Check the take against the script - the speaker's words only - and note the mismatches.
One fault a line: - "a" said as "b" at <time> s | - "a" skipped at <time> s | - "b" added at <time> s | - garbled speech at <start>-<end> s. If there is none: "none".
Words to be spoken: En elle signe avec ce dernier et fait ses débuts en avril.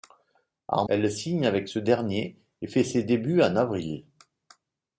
none